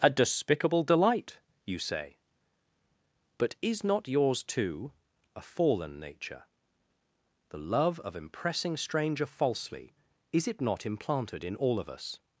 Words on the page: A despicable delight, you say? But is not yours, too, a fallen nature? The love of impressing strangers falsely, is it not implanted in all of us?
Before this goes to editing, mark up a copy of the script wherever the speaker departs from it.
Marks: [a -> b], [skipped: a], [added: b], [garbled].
A despicable delight, you say? But is not yours, too, a fallen nature? The love of impressing [strangers -> stranger] falsely, is it not implanted in all of us?